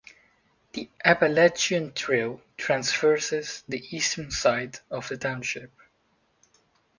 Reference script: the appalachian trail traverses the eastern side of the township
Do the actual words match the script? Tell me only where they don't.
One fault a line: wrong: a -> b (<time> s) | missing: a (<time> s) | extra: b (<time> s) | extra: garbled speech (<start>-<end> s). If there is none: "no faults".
no faults